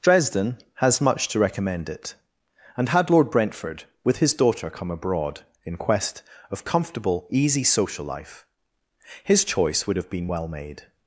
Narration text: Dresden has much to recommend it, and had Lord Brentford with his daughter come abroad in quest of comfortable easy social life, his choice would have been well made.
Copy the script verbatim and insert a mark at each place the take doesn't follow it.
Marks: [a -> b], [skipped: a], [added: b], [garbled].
Dresden has much to recommend it, and had Lord Brentford with his daughter come abroad in quest of comfortable easy social life, his choice would have been well made.